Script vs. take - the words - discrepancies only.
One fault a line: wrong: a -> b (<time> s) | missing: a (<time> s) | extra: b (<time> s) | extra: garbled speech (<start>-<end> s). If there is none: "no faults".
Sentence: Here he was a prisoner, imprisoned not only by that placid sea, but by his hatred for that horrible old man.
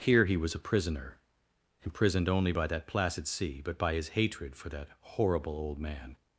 missing: not (2.3 s)